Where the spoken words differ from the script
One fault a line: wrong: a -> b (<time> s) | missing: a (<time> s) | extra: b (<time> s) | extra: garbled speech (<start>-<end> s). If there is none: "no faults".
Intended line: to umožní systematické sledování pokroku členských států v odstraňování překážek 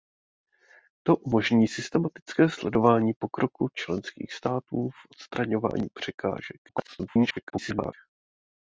extra: garbled speech (6.7-7.9 s)